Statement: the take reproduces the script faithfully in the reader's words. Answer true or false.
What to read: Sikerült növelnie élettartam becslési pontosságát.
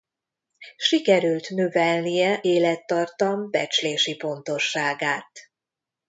true